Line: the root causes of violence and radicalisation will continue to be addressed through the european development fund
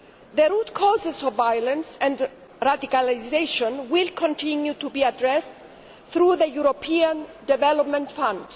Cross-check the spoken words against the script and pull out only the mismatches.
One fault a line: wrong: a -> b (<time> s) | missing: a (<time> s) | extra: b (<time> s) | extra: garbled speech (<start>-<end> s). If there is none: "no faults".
no faults